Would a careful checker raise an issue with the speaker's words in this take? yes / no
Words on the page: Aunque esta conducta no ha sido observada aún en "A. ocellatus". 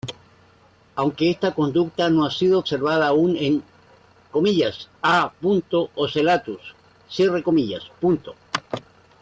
no